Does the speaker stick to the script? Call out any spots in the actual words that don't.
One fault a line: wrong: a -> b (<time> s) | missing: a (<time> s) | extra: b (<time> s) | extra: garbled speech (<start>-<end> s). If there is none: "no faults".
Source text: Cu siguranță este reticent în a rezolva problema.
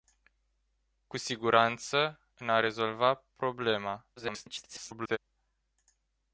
missing: este reticent (2.2 s)
extra: garbled speech (4.2-5.2 s)